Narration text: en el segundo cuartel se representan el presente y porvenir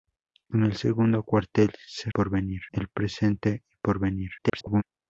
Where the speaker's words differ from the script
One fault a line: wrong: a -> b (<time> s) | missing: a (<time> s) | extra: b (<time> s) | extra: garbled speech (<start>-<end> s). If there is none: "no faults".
wrong: representan -> porvenir (2.1 s)
extra: garbled speech (4.4-4.8 s)